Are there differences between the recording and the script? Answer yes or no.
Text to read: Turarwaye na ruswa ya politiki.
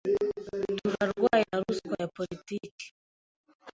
no